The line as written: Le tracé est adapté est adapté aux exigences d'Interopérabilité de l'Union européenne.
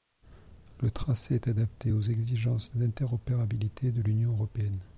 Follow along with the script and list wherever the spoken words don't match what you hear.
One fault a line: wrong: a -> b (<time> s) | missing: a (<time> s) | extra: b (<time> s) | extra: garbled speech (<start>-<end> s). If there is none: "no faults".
missing: est adapté (1.9 s)